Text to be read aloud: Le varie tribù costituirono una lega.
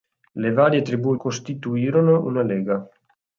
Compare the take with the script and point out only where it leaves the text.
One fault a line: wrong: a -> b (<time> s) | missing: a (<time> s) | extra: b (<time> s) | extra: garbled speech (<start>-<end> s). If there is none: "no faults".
no faults